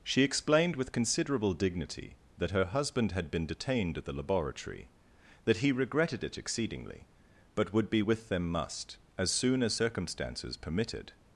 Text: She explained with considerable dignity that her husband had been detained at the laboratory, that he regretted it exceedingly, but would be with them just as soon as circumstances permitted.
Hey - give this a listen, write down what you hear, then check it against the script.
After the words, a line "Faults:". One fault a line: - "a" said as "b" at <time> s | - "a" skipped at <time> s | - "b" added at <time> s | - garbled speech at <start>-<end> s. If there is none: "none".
She explained with considerable dignity that her husband had been detained at the laboratory, that he regretted it exceedingly, but would be with them must as soon as circumstances permitted.
Faults:
- "just" said as "must" at 8.5 s